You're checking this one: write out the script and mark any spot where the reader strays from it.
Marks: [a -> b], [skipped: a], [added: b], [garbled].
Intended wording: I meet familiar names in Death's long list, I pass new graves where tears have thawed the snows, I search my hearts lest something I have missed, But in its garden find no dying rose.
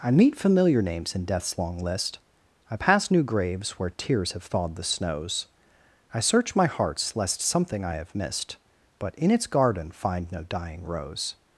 I meet familiar names in Death's long list, I pass new graves where tears have thawed the snows, I search my hearts lest something I have missed, But in its garden find no dying rose.